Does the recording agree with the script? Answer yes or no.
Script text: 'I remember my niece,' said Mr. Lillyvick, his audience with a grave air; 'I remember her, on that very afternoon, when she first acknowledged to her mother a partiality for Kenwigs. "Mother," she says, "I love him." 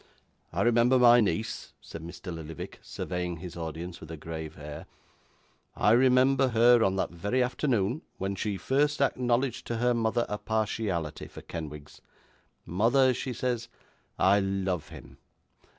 no